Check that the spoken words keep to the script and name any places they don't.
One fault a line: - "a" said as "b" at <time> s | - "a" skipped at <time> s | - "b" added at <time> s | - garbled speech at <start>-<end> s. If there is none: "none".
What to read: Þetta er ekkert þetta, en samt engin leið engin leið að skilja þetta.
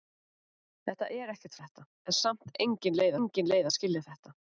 none